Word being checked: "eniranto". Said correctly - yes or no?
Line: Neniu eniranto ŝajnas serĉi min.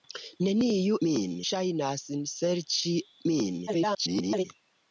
no